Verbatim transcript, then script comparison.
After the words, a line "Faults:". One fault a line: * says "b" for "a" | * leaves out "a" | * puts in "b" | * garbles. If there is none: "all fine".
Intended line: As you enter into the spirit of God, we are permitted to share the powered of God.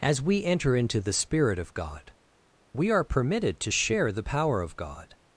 As we enter into the spirit of God, we are permitted to share the power of God.
Faults:
* says "we" for "you"
* says "power" for "powered"